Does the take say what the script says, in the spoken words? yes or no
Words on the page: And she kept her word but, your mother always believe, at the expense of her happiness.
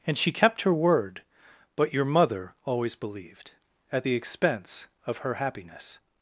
no